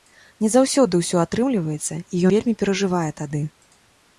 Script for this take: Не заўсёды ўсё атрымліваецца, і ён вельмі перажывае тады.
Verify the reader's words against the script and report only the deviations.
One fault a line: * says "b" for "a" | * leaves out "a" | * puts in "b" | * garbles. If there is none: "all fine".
* leaves out "ён"